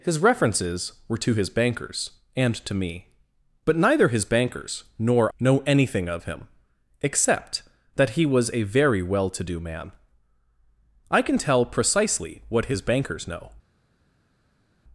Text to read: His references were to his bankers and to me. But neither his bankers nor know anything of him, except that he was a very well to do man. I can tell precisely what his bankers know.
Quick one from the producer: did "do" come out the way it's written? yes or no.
yes